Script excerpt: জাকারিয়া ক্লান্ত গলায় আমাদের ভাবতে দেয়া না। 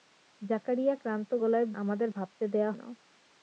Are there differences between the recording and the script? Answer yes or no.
no